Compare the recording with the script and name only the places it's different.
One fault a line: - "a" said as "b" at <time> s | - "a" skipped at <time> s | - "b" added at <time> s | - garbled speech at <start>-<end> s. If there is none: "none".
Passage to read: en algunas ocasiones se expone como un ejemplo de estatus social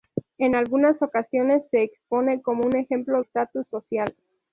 - "de" skipped at 3.2 s